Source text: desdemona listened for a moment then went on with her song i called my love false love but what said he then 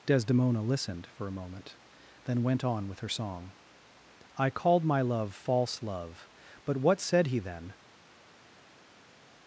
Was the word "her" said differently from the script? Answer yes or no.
no